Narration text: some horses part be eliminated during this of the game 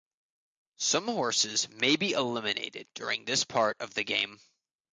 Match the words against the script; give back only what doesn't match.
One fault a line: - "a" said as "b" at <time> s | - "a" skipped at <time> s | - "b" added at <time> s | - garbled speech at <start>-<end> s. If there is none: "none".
- "part" said as "may" at 1.7 s
- "part" added at 3.4 s